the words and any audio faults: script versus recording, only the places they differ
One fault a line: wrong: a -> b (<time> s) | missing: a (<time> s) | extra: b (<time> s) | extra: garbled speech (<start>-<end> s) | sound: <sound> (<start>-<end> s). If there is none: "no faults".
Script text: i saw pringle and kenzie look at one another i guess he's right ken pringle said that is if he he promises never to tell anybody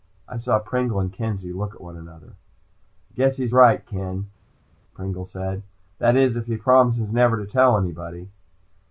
missing: he (6.6 s)